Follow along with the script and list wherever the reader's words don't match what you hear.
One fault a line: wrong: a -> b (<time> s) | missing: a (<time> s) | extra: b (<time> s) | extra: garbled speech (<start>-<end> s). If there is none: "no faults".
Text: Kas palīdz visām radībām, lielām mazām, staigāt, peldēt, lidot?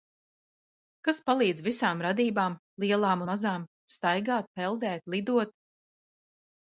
no faults